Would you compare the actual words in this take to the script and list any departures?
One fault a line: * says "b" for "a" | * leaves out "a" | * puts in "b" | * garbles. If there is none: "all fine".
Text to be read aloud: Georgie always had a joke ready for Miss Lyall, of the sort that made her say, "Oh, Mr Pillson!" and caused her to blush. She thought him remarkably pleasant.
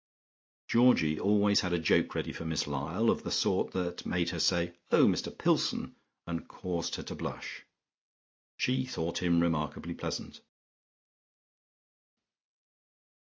all fine